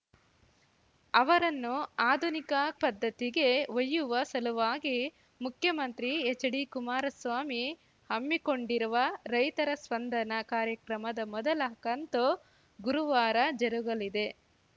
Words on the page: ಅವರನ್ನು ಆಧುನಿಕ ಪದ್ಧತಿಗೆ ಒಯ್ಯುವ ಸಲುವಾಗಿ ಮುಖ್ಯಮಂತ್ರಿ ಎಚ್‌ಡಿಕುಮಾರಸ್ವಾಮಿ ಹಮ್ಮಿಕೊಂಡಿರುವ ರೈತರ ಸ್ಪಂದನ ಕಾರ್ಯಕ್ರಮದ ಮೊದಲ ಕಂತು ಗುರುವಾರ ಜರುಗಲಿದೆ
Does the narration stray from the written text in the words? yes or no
no